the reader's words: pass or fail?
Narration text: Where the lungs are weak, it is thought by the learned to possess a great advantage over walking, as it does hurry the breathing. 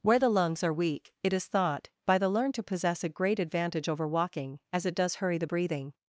pass